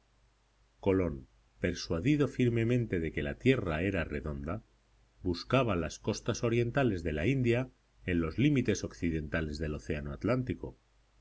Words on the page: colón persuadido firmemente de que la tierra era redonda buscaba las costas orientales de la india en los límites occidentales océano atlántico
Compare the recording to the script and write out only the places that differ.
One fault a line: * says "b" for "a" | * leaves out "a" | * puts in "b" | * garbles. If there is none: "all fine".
* puts in "del"